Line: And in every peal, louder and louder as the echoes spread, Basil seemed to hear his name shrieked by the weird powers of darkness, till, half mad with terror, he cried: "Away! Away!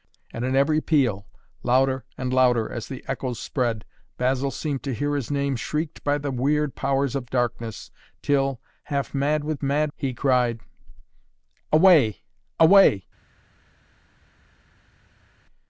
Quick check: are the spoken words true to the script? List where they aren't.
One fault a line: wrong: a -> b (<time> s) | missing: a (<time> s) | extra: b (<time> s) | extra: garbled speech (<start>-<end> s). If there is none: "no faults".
wrong: terror -> mad (9.6 s)